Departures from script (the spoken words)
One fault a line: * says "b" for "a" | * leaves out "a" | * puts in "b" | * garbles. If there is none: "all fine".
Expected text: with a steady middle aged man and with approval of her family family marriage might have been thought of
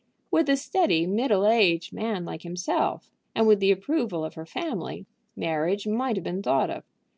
* puts in "like himself"
* puts in "the"
* leaves out "family"